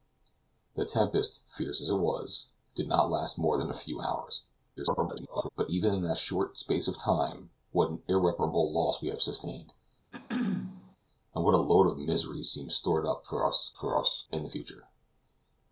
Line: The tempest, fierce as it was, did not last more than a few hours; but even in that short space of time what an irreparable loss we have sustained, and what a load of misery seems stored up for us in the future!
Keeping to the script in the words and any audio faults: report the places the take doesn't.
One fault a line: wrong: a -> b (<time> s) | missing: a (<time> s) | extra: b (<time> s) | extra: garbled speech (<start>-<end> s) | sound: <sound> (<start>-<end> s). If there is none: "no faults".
extra: garbled speech (4.8-5.5 s)
sound: throat clearing (10.1-11.0 s)
extra: for us (13.8 s)